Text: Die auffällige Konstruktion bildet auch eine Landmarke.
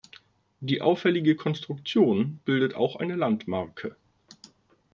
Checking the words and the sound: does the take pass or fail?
pass